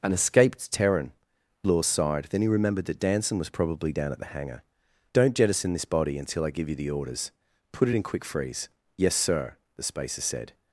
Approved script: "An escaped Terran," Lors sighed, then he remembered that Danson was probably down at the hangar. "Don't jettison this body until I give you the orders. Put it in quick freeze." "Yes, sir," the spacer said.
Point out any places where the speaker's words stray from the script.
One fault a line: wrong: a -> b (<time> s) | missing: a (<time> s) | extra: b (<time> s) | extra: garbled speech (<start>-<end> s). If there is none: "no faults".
no faults